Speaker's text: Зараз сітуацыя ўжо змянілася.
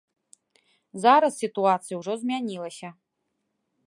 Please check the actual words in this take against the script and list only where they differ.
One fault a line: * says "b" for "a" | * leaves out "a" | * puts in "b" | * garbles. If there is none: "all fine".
all fine